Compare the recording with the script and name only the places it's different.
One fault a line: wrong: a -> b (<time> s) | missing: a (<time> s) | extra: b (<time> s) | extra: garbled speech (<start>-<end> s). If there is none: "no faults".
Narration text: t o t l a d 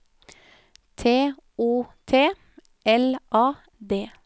no faults